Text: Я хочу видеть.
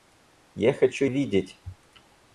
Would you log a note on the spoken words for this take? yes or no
no